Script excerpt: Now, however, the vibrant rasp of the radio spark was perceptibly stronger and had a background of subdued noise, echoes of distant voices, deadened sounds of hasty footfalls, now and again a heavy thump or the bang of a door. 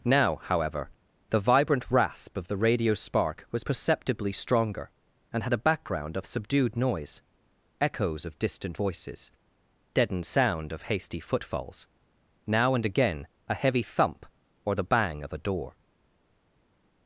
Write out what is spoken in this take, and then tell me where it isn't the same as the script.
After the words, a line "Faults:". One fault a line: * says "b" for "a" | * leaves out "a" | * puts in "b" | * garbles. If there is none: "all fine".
Now, however, the vibrant rasp of the radio spark was perceptibly stronger and had a background of subdued noise, echoes of distant voices, deadened sound of hasty footfalls, now and again a heavy thump or the bang of a door.
Faults:
* says "sound" for "sounds"